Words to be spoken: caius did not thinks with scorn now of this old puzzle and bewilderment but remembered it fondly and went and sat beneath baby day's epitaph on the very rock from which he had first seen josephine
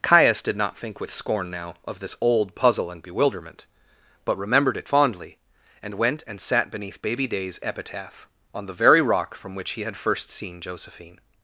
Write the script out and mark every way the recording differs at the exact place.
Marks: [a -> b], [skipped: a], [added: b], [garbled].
caius did not [thinks -> think] with scorn now of this old puzzle and bewilderment but remembered it fondly and went and sat beneath baby day's epitaph on the very rock from which he had first seen josephine